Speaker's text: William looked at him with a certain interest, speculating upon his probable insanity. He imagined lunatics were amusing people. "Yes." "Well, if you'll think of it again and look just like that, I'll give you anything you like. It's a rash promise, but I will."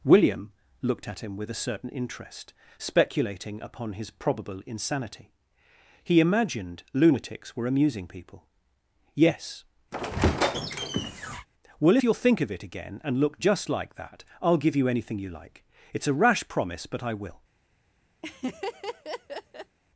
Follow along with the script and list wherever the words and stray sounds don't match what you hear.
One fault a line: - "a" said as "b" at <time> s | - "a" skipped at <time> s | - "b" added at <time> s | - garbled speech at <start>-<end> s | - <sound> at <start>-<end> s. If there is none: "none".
- squeak at 9.9-11.5 s
- "if" skipped at 12.0 s
- laugh at 18.2-19.8 s